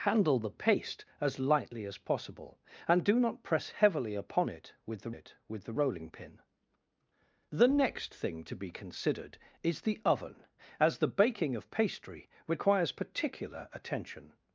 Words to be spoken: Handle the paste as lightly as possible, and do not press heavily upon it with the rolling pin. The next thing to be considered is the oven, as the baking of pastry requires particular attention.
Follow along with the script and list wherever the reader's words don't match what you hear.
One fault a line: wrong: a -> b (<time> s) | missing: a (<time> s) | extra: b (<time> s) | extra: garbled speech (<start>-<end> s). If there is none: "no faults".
extra: it with the (5.1 s)